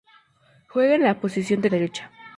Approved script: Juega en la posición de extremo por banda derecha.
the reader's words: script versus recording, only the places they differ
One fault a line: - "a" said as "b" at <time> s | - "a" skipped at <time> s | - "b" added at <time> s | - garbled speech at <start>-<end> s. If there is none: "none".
- "extremo por banda" skipped at 1.7 s